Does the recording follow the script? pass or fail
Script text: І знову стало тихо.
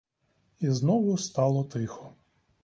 pass